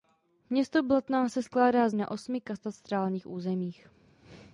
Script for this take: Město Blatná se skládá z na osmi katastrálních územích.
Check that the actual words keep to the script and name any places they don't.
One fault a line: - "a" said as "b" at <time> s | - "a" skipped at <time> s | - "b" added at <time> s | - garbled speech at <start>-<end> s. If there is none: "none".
none